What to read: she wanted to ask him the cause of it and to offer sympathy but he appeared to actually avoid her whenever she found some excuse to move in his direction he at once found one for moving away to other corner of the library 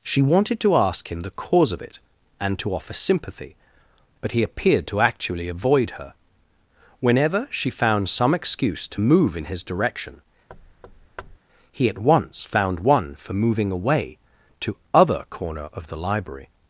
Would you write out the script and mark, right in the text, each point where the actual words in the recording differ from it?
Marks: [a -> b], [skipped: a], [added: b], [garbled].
she wanted to ask him the cause of it and to offer sympathy but he appeared to actually avoid her whenever she found some excuse to move in his direction he at once found one for moving away to other corner of the library